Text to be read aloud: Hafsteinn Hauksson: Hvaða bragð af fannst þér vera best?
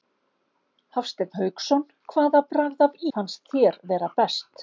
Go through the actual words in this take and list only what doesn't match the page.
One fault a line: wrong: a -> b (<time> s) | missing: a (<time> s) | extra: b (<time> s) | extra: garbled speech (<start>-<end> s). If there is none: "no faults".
no faults